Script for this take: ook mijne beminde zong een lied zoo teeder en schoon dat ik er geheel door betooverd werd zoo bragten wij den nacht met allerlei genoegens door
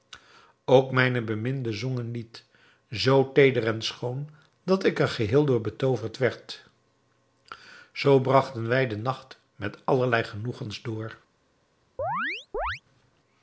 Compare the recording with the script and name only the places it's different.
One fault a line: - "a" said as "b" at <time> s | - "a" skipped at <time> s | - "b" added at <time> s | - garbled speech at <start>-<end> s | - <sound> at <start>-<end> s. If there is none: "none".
- chirp at 12.0-12.8 s